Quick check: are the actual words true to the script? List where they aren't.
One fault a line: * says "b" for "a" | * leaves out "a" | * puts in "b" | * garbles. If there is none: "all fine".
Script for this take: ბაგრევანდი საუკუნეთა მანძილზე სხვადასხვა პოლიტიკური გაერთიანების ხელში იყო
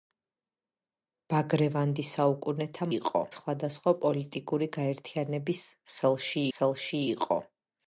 * says "იყო" for "მანძილზე"
* puts in "ხელში"